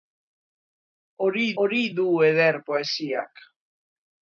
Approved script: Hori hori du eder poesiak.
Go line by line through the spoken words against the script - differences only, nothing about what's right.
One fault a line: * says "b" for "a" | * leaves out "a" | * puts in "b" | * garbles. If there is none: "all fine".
all fine